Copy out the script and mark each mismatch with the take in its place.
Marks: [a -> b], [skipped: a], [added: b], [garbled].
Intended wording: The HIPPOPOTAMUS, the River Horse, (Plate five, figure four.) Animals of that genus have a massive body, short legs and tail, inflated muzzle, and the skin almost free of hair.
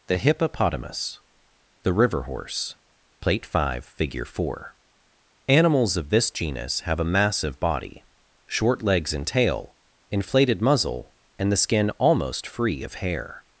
The HIPPOPOTAMUS, the River Horse, (Plate five, figure four.) Animals of [that -> this] genus have a massive body, short legs and tail, inflated muzzle, and the skin almost free of hair.